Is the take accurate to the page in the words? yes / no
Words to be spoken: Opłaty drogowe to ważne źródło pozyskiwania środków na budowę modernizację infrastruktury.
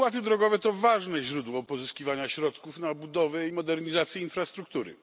yes